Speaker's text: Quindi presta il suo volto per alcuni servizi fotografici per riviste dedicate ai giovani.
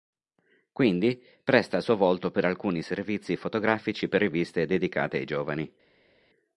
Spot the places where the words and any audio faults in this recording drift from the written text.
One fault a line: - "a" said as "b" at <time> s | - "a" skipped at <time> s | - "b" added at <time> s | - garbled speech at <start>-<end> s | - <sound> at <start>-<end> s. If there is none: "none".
none